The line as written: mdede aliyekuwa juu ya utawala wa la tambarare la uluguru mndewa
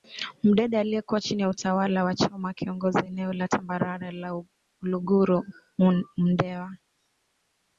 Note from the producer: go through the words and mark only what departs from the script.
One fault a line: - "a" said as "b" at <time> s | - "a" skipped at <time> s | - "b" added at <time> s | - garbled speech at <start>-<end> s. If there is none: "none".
- "juu" said as "chini" at 1.2 s
- "choma akiongoza eneo" added at 2.1 s